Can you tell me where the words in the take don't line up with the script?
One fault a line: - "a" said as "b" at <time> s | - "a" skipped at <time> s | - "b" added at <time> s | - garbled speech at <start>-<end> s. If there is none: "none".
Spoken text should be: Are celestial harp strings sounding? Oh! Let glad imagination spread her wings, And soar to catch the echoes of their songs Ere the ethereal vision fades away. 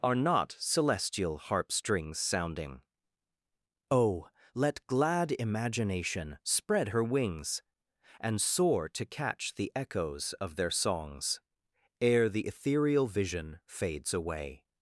- "not" added at 0.1 s